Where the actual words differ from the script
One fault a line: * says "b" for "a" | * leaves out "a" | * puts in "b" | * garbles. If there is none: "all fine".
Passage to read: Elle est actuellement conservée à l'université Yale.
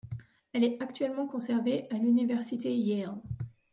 all fine